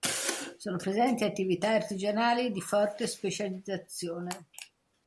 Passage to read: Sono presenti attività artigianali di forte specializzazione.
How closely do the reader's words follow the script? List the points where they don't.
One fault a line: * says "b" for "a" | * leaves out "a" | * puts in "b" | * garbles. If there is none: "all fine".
all fine